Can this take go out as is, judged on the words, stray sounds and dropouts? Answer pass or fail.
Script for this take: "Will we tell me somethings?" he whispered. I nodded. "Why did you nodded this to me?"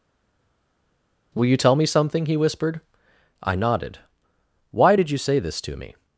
fail